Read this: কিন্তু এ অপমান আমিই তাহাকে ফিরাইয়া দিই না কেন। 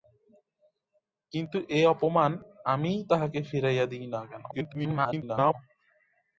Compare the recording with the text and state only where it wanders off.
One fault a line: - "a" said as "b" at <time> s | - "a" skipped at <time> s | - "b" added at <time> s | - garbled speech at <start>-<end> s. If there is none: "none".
- garbled speech at 4.5-5.5 s